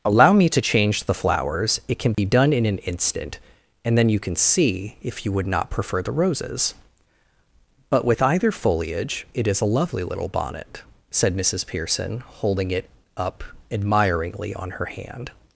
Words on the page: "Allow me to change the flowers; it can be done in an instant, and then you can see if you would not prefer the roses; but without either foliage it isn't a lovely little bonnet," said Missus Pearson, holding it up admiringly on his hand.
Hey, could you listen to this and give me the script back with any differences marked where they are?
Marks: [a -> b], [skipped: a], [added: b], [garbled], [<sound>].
"Allow me to change the flowers; it can be [dropout] done in an instant, and then you can see if you would not prefer the roses; but [without -> with] either foliage it [isn't -> is] a lovely little bonnet," said Missus Pearson, holding it up admiringly on [his -> her] hand.